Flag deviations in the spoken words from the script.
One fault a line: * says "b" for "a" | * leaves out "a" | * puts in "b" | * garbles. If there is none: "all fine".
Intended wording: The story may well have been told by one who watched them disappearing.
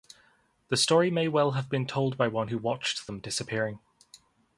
all fine